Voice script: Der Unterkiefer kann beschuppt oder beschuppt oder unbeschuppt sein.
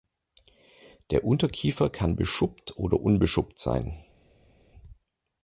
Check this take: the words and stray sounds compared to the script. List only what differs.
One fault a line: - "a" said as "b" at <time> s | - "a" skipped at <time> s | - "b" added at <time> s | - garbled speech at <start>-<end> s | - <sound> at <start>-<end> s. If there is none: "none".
- "beschuppt oder" skipped at 3.0 s